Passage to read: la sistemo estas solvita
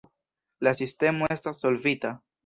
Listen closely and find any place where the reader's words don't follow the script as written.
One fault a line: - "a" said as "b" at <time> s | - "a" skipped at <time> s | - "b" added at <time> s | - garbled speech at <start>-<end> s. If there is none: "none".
none